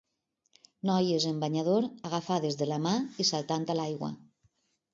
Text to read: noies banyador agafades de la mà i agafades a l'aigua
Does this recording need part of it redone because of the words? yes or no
yes